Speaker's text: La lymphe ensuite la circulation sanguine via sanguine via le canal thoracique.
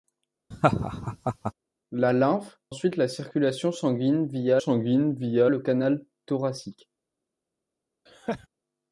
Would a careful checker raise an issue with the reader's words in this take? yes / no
no